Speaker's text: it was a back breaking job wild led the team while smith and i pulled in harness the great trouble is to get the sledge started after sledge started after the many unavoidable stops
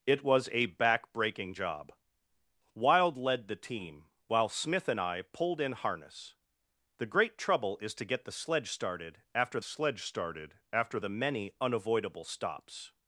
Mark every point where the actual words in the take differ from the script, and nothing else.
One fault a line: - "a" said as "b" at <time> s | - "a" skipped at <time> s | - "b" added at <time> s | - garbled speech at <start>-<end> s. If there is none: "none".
none